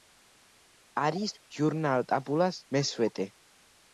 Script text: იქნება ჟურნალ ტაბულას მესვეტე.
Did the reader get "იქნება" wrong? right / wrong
wrong